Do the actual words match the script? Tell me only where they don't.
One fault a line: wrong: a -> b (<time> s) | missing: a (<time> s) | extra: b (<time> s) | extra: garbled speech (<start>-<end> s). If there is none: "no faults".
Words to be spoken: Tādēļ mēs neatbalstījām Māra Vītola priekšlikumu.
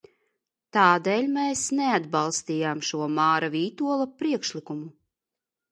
extra: šo (2.9 s)